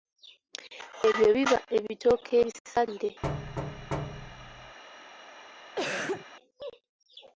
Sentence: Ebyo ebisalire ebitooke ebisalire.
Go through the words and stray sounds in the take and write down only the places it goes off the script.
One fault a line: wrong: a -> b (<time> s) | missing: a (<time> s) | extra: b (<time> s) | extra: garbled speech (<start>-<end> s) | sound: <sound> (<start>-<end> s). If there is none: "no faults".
wrong: ebisalire -> biba (1.3 s)
sound: thud (3.2-4.8 s)
sound: cough (5.8-6.3 s)